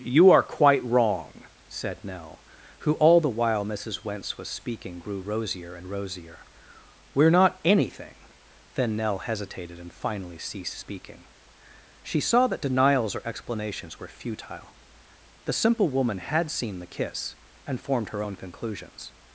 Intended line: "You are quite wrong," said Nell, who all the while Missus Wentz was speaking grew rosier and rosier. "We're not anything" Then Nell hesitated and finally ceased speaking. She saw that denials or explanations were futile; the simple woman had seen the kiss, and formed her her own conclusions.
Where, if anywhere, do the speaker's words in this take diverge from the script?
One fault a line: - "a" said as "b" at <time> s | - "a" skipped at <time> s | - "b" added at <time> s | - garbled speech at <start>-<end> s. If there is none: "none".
- "her" skipped at 18.2 s